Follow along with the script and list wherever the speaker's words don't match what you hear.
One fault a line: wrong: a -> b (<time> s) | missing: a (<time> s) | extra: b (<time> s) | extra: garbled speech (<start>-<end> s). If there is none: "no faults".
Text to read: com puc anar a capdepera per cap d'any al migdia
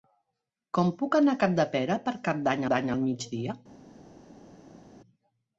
extra: d'any (2.7 s)